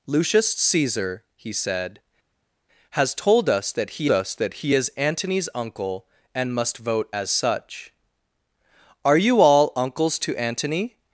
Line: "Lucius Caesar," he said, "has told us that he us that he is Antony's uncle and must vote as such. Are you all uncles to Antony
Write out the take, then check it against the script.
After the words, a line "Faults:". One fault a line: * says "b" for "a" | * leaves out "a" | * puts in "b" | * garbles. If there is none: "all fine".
"Lucius Caesar," he said, "has told us that he us that he is Antony's uncle and must vote as such. Are you all uncles to Antony
Faults:
all fine